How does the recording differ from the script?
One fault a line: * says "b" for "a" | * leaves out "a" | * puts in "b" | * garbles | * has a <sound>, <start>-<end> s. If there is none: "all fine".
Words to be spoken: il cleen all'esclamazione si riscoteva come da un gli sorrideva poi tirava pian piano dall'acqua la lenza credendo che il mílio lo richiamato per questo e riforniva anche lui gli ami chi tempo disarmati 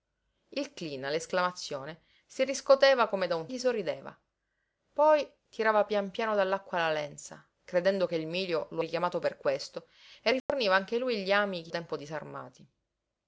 * has a dropout, 10.4-10.5 s